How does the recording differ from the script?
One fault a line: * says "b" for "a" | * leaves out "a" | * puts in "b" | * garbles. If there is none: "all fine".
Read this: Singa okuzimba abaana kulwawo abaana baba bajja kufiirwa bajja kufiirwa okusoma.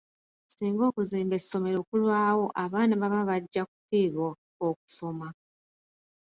* says "essomero" for "abaana"
* leaves out "bajja kufiirwa"